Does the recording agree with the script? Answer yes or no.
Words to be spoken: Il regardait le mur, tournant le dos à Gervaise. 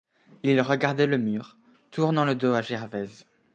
yes